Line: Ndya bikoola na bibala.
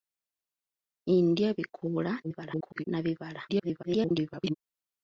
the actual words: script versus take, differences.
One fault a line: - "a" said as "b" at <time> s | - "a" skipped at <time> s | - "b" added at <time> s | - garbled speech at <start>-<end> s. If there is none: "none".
- garbled speech at 2.2-2.8 s
- garbled speech at 3.5-4.5 s